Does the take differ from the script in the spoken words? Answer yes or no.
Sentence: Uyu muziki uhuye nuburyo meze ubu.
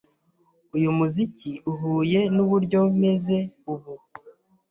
no